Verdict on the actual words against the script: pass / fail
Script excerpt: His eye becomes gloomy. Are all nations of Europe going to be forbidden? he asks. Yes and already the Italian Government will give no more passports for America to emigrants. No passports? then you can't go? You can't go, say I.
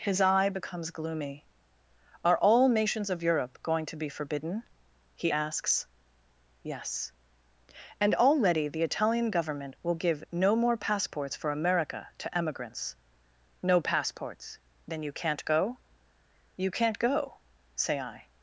pass